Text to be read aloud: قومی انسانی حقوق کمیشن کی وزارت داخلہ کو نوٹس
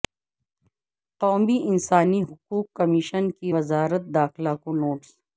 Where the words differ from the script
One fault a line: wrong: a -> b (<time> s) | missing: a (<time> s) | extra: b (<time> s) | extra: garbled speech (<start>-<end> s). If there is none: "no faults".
no faults